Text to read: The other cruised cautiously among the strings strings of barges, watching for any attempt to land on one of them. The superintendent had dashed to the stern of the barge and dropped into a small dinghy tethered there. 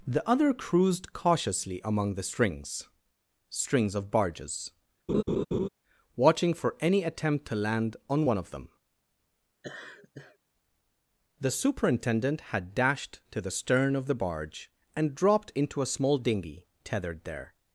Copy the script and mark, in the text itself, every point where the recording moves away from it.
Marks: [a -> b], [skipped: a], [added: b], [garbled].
The other cruised cautiously among the strings strings of barges, watching for any attempt to land on one of them. The superintendent had dashed to the stern of the barge and dropped into a small dinghy tethered there.